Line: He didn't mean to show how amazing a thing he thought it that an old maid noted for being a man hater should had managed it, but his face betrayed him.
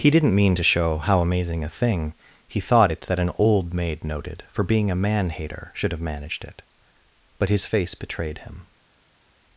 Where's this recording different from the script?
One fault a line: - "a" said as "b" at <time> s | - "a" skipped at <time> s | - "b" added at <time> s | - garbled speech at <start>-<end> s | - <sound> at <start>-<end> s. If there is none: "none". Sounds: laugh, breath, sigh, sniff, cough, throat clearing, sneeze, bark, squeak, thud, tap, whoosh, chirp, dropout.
- "had" said as "have" at 5.9 s